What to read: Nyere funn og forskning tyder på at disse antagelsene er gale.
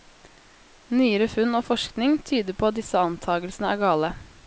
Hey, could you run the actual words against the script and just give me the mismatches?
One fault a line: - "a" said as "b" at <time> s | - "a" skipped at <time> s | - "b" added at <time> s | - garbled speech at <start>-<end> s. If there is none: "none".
none